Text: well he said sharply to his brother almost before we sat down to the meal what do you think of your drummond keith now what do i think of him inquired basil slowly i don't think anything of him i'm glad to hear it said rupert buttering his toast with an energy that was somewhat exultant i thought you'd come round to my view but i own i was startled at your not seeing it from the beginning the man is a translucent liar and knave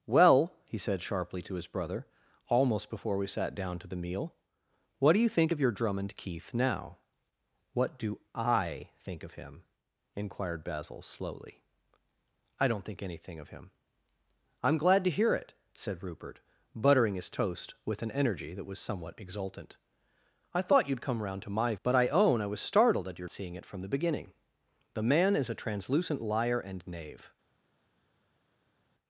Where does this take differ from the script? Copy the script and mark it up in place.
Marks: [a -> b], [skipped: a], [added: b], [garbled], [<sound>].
well he said sharply to his brother almost before we sat down to the meal what do you think of your drummond keith now what do i think of him inquired basil slowly i don't think anything of him i'm glad to hear it said rupert buttering his toast with an energy that was somewhat exultant i thought you'd come round to my [skipped: view] but i own i was startled at your [skipped: not] seeing it from the beginning the man is a translucent liar and knave